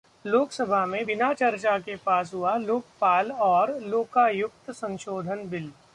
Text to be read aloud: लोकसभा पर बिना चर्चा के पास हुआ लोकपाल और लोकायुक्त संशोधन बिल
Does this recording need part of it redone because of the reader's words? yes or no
yes